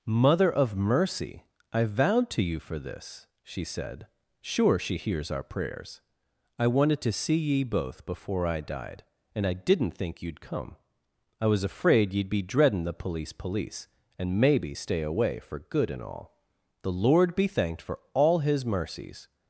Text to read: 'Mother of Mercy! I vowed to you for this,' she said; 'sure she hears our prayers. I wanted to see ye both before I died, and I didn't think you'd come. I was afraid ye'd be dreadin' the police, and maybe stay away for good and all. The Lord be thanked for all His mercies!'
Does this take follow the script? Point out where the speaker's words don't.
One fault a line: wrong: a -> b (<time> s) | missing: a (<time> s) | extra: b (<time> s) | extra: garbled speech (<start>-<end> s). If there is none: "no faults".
extra: police (13.3 s)